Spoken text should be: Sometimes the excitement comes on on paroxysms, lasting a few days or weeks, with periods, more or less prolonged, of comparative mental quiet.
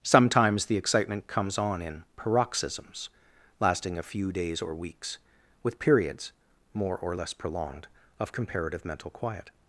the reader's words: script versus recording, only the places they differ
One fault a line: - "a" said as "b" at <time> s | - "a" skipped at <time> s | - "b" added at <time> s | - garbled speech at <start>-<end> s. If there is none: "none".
- "on" said as "in" at 1.8 s